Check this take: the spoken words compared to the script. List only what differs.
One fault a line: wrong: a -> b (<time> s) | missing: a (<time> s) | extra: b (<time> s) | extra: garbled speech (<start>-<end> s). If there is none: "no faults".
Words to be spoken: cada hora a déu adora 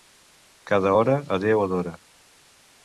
no faults